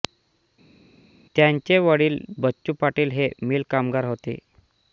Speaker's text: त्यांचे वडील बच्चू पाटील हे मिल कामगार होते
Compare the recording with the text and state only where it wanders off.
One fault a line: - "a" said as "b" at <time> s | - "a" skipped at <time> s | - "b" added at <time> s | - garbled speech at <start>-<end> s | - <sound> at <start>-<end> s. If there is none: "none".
none